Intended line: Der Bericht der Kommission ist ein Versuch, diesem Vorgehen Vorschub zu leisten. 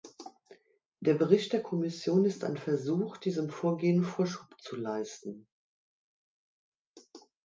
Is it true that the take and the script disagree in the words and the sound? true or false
false